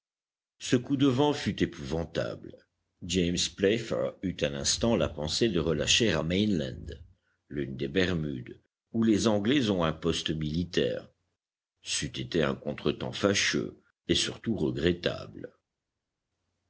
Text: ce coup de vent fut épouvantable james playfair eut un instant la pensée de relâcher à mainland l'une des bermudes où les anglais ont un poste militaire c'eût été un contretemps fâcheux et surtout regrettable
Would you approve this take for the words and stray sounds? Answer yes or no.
yes